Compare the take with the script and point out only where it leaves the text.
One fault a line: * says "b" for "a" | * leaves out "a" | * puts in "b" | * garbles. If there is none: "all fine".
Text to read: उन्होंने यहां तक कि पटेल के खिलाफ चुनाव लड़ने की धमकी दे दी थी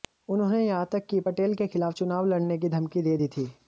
all fine